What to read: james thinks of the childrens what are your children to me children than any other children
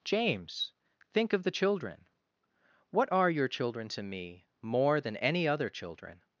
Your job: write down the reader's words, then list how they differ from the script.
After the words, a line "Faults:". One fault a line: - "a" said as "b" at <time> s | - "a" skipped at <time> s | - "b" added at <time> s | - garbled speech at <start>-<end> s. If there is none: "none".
james think of the children what are your children to me more than any other children
Faults:
- "thinks" said as "think" at 1.1 s
- "childrens" said as "children" at 1.5 s
- "children" said as "more" at 4.6 s